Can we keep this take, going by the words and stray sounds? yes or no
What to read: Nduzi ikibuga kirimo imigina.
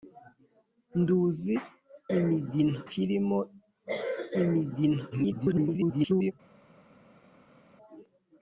no